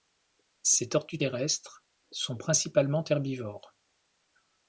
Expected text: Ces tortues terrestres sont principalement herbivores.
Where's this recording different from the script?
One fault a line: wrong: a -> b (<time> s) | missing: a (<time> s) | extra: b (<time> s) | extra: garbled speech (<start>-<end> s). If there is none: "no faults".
no faults